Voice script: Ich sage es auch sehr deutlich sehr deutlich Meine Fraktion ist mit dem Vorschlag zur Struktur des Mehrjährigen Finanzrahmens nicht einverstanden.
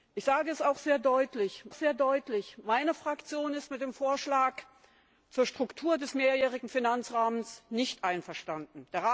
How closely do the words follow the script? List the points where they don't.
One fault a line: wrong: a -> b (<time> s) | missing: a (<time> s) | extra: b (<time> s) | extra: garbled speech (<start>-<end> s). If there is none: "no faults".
no faults